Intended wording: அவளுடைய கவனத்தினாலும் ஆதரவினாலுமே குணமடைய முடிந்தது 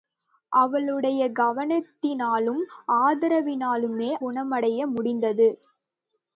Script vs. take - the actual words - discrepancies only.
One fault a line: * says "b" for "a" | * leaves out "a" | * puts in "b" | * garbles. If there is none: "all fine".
all fine